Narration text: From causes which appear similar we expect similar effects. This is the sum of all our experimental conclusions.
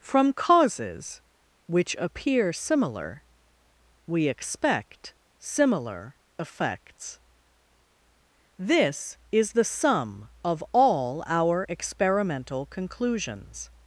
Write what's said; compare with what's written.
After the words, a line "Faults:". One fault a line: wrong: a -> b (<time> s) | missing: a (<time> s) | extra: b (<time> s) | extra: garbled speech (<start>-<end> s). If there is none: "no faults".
From causes which appear similar we expect similar effects. This is the sum of all our experimental conclusions.
Faults:
no faults